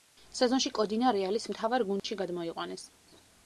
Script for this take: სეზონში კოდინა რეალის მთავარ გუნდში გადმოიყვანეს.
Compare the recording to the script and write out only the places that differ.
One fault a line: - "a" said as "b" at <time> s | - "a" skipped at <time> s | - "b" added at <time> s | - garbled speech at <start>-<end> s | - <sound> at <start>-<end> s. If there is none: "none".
- dropout at 2.0-2.0 s